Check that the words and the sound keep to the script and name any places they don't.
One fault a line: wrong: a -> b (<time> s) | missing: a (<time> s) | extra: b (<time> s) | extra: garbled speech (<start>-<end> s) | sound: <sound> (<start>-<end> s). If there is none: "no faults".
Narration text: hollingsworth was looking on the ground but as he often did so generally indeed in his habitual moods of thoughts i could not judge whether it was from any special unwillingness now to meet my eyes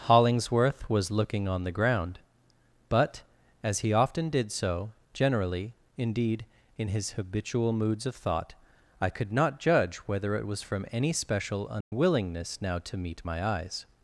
wrong: thoughts -> thought (8.2 s)
sound: dropout (11.8-11.9 s)